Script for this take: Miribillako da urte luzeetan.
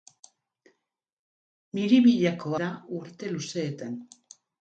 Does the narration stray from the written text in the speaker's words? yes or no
no